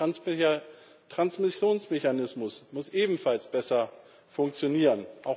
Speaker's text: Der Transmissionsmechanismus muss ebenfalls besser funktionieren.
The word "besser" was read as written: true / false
true